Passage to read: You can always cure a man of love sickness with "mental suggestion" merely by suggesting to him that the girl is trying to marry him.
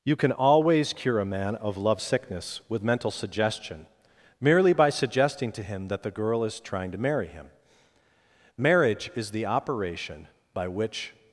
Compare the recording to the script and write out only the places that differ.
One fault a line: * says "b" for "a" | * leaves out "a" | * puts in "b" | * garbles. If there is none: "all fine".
* puts in "Marriage is the operation by which"